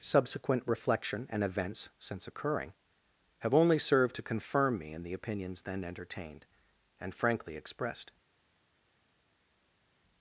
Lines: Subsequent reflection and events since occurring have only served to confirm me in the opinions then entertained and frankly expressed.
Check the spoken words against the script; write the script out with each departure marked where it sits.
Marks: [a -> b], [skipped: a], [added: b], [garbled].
Subsequent reflection and events since occurring have only served to confirm me in the opinions then entertained and frankly expressed.